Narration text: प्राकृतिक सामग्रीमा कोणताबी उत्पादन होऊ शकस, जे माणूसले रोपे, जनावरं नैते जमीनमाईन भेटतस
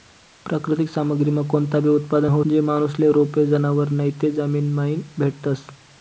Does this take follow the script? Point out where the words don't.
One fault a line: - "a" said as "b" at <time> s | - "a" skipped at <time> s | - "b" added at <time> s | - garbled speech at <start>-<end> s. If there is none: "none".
- "शकस" skipped at 2.4 s